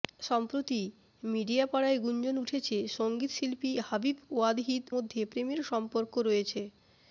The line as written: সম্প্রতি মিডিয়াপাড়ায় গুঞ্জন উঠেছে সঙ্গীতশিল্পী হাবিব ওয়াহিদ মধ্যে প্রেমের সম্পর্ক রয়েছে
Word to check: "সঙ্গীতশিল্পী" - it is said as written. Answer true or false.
true